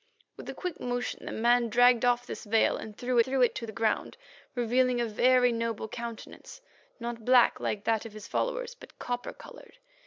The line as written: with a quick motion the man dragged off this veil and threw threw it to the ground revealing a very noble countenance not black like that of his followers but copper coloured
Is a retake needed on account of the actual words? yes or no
no